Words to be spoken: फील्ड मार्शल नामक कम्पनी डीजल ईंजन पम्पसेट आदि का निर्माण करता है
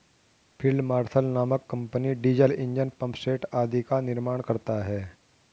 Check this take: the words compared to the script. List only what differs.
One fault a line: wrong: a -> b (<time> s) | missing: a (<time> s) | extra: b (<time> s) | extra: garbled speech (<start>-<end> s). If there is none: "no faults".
no faults